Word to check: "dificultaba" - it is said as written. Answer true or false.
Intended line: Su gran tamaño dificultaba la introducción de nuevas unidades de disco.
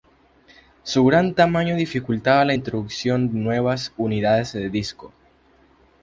true